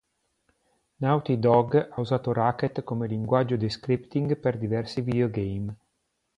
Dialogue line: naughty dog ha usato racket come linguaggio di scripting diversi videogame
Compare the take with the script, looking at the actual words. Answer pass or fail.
fail